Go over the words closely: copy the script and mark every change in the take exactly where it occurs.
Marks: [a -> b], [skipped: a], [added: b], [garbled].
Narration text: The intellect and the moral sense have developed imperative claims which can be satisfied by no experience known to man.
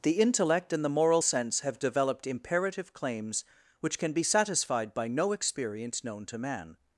The intellect and the moral sense have developed imperative claims which can be satisfied by no experience known to man.